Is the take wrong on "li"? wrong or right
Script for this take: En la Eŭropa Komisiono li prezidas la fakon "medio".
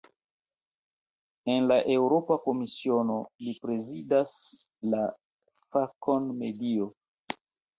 right